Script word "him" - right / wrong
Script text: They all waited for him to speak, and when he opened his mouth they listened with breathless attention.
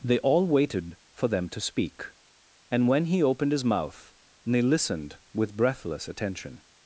wrong